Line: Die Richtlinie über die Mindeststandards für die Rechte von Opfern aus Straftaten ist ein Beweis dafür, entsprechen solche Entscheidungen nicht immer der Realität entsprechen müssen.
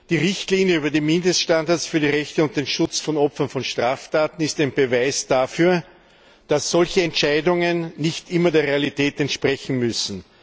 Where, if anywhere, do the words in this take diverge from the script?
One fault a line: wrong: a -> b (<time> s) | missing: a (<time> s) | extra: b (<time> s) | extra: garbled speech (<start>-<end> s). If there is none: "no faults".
extra: und den Schutz (2.4 s)
wrong: aus -> von (3.5 s)
wrong: entsprechen -> dass (6.5 s)